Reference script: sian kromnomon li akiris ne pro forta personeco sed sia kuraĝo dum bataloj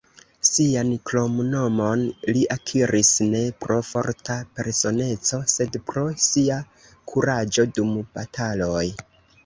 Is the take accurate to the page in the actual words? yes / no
no